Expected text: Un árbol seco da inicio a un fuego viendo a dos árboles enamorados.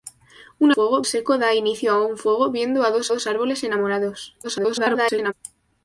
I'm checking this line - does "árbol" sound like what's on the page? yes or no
no